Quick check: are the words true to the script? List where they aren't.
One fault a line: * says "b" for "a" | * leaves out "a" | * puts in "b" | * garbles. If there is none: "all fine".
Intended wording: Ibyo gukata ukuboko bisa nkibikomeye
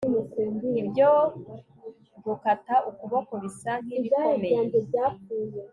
all fine